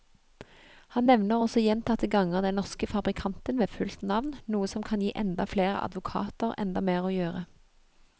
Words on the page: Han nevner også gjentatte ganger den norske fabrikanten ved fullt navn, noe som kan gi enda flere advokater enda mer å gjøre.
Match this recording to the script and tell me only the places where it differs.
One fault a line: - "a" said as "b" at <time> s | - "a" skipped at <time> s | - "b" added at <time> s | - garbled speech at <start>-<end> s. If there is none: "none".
none